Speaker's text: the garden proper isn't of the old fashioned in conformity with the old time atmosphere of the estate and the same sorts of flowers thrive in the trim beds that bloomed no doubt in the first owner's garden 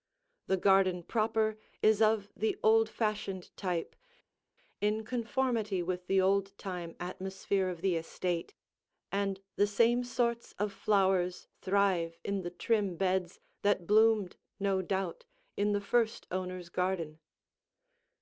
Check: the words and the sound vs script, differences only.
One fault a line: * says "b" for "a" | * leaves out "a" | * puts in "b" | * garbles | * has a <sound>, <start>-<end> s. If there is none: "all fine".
* says "is" for "isn't"
* puts in "type"